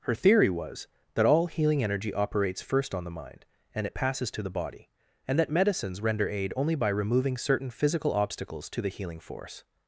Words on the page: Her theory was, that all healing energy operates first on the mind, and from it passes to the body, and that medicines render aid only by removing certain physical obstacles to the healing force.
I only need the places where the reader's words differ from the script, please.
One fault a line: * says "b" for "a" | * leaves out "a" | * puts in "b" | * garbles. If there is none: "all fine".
* leaves out "from"